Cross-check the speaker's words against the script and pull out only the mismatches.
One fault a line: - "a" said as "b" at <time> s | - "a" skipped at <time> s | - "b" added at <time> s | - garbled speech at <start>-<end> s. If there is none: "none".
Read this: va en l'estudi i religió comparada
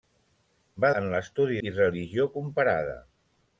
none